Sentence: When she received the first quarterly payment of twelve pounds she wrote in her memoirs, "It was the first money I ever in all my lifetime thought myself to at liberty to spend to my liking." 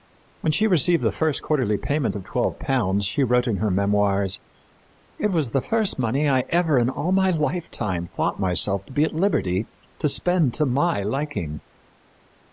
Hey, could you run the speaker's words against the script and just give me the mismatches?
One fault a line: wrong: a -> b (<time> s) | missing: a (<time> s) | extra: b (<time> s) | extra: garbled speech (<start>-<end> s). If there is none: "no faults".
extra: be (8.9 s)